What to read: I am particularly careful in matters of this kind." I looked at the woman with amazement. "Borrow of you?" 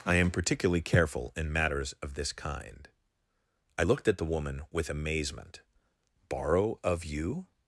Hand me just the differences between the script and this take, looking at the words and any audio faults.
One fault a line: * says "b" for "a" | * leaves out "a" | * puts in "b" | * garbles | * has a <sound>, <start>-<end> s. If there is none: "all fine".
all fine